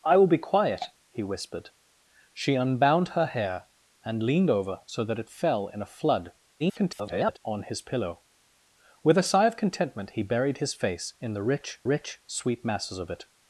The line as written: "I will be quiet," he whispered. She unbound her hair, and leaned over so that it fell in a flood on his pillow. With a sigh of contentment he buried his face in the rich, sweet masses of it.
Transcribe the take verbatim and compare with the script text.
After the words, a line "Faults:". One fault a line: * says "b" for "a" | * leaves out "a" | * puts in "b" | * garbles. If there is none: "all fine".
"I will be quiet," he whispered. She unbound her hair, and leaned over so that it fell in a flood [garbled] on his pillow. With a sigh of contentment he buried his face in the rich rich, sweet masses of it.
Faults:
* garbles
* puts in "rich"